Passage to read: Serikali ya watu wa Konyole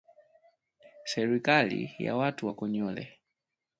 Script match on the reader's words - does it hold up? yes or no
yes